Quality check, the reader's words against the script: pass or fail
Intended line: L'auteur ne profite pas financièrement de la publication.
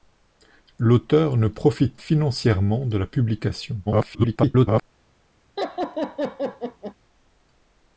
fail